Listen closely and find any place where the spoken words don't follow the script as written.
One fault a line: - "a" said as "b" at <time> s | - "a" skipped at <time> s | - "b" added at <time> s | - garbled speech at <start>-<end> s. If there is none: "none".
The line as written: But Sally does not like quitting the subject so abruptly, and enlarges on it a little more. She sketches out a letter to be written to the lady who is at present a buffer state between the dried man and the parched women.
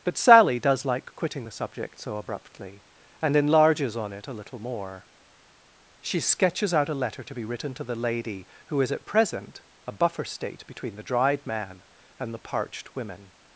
- "not" skipped at 0.8 s